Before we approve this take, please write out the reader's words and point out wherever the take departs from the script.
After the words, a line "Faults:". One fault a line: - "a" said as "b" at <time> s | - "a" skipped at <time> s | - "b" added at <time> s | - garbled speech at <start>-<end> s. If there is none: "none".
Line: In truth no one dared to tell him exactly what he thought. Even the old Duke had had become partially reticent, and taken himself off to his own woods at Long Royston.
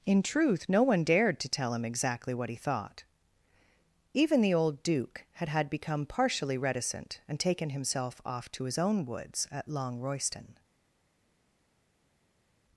In truth no one dared to tell him exactly what he thought. Even the old Duke had had become partially reticent, and taken himself off to his own woods at Long Royston.
Faults:
none